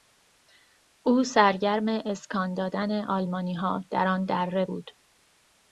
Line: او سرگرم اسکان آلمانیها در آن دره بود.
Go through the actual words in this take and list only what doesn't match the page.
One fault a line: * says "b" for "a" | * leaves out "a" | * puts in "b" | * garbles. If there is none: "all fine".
* puts in "دادن"